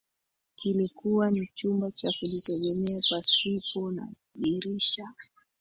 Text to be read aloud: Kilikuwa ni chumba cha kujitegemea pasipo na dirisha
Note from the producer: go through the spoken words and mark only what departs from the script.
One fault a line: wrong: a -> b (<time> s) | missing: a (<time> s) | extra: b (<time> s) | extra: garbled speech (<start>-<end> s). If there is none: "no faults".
no faults